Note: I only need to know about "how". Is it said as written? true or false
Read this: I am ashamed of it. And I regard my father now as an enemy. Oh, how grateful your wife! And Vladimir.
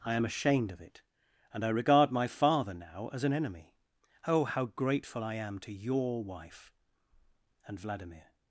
true